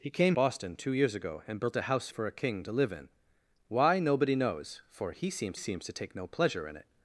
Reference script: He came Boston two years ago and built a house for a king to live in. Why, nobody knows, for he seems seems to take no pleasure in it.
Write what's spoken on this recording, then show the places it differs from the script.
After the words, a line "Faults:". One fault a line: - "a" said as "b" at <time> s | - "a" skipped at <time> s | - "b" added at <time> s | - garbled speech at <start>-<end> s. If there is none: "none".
He came Boston two years ago and built a house for a king to live in. Why, nobody knows, for he seems seems to take no pleasure in it.
Faults:
none